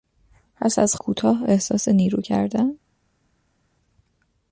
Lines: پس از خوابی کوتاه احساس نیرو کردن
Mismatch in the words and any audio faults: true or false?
true